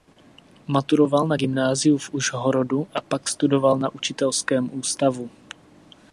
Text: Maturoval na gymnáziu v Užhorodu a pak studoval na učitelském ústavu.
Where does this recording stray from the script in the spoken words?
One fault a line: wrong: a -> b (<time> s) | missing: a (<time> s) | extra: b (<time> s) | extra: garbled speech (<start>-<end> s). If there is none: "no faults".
no faults